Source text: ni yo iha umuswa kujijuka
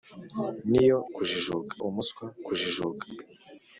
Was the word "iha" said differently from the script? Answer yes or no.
yes